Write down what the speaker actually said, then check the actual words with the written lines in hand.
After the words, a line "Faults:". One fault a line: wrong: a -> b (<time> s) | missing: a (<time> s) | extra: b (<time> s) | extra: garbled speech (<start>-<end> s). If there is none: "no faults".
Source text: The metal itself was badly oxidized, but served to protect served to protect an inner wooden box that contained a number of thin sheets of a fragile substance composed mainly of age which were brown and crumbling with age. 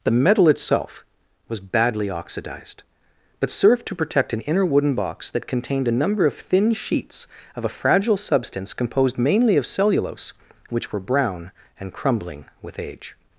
The metal itself was badly oxidized, but served to protect an inner wooden box that contained a number of thin sheets of a fragile substance composed mainly of cellulose which were brown and crumbling with age.
Faults:
missing: served to protect (4.3 s)
wrong: age -> cellulose (9.7 s)